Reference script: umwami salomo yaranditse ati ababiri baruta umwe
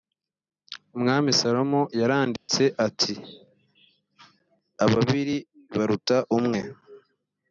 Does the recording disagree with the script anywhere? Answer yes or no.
no